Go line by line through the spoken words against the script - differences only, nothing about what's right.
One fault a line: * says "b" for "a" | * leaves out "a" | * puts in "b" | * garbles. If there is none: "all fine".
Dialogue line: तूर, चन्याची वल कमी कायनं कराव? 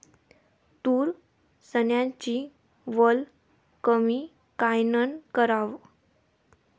all fine